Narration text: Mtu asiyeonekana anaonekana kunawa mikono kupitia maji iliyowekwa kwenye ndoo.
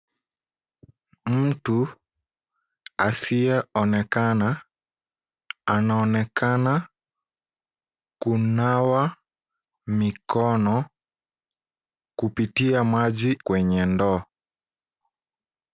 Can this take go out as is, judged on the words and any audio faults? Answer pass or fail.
fail